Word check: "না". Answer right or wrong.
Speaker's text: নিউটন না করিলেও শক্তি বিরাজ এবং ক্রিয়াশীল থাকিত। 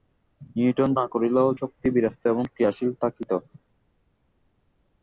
right